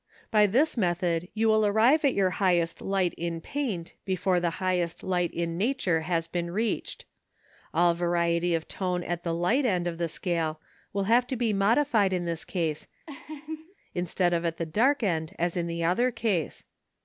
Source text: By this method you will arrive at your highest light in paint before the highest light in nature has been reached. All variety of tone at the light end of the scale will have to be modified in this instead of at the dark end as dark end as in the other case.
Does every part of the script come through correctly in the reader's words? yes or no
no